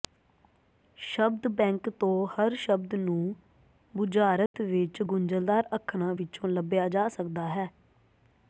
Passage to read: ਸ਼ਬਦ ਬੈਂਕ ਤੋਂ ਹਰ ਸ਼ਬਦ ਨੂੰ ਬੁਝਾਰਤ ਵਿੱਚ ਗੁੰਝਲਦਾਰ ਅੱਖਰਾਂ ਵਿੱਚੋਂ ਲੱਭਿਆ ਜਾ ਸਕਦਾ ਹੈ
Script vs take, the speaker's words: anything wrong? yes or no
no